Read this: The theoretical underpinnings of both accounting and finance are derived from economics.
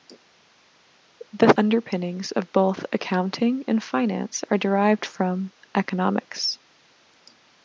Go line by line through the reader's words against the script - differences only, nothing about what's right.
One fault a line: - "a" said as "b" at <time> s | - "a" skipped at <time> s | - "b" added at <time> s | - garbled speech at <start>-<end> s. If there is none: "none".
- "theoretical" skipped at 1.5 s